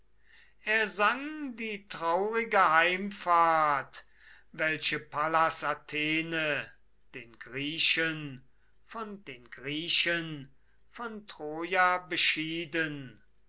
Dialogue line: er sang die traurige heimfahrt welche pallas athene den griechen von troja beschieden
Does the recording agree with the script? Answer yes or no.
no